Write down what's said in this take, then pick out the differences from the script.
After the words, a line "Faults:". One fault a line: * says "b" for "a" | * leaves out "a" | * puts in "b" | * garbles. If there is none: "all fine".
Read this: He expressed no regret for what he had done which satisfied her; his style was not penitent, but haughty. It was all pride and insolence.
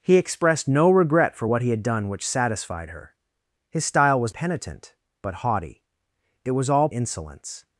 He expressed no regret for what he had done which satisfied her; his style was penitent, but haughty. It was all insolence.
Faults:
* leaves out "not"
* leaves out "pride and"